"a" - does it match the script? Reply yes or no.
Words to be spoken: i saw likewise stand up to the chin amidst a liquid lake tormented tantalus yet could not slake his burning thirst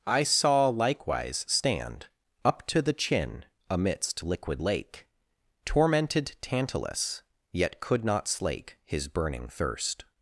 no